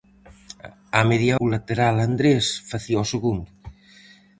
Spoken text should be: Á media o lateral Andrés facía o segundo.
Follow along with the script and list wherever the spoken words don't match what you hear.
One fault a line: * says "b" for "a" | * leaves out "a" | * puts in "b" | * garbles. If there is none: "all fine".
all fine